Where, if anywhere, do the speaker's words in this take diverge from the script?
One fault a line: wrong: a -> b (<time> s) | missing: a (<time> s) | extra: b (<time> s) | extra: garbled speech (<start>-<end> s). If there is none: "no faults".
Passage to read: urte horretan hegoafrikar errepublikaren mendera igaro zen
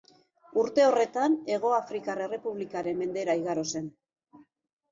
no faults